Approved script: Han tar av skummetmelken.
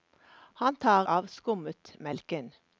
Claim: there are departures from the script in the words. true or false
false